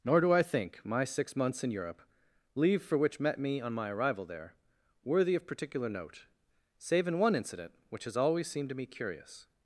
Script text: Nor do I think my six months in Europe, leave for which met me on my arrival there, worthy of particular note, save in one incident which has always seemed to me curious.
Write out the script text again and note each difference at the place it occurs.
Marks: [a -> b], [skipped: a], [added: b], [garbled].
Nor do I think my six months in Europe, leave for which met me on my arrival there, worthy of particular note, save in one incident which has always seemed to me curious.